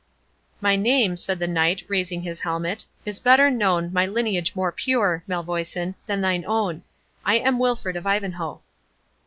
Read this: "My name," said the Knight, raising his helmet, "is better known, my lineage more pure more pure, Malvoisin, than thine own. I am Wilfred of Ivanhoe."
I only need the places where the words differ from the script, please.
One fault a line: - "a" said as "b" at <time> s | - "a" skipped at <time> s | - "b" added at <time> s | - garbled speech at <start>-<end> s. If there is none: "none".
- "more pure" skipped at 5.2 s